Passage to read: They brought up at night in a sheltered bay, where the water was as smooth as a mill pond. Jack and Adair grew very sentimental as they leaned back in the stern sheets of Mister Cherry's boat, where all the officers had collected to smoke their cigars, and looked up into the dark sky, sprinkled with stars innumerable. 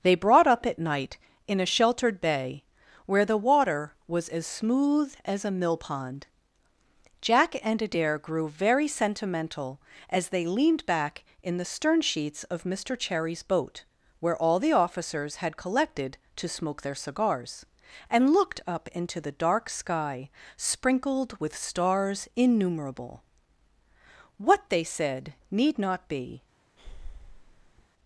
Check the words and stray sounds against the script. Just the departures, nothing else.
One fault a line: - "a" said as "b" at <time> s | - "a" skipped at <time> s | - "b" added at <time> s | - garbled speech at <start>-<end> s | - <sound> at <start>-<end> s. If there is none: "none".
- "What they said need not be" added at 24.4 s
- breath at 26.8-27.9 s